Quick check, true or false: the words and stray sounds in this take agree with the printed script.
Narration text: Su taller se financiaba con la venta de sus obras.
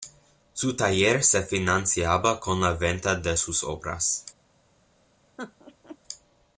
false